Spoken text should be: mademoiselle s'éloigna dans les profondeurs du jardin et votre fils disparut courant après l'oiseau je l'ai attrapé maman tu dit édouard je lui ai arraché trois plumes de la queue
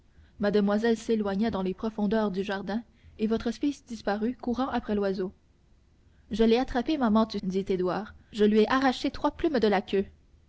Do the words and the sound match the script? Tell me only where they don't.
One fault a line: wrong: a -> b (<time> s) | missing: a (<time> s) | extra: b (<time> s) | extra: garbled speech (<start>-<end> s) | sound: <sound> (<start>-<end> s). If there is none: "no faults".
no faults